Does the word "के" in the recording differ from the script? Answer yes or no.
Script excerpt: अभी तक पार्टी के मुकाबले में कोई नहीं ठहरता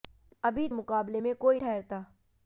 yes